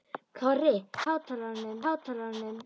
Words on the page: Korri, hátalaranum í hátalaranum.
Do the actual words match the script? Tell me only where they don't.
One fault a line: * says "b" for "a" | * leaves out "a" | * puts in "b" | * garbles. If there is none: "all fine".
all fine